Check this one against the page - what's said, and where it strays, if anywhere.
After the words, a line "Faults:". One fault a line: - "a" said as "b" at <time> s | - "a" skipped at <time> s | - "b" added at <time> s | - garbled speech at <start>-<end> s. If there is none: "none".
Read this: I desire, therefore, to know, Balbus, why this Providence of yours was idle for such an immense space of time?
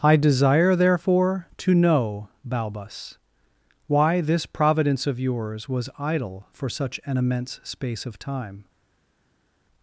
I desire, therefore, to know, Balbus, why this Providence of yours was idle for such an immense space of time?
Faults:
none